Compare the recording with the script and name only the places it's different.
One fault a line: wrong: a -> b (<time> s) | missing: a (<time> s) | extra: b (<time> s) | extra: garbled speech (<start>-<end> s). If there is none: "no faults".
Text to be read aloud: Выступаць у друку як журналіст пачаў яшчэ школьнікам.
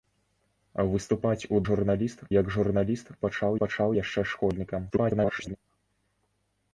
wrong: друку -> журналіст (1.7 s)
extra: пачаў (3.6 s)
extra: garbled speech (4.9-5.6 s)